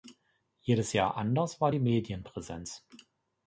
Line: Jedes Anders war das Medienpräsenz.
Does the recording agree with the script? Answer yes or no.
no